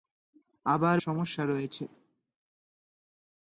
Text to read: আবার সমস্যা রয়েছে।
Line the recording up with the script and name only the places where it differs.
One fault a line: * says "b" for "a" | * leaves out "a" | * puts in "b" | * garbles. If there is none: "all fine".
all fine